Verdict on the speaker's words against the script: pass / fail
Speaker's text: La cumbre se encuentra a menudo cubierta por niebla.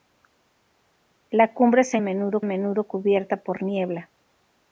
fail